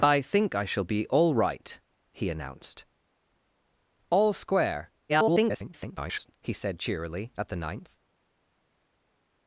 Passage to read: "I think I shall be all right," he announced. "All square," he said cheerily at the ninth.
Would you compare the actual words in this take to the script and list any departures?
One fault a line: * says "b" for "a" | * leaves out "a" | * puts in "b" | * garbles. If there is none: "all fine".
* garbles